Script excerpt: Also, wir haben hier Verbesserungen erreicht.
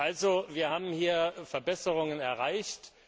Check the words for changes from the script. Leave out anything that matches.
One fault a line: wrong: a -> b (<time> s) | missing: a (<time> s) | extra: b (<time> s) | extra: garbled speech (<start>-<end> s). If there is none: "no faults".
no faults